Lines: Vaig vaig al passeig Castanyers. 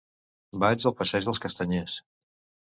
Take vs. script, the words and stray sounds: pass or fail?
fail